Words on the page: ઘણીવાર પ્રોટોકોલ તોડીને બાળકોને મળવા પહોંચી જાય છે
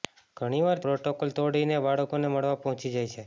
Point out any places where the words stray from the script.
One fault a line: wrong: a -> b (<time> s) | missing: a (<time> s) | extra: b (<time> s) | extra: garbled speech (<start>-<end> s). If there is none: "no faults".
no faults